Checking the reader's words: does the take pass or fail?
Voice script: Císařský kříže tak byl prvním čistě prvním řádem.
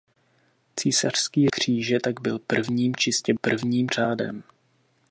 pass